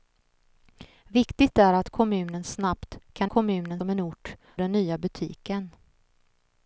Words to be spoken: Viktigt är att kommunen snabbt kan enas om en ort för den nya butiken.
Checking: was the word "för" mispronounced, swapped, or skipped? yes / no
yes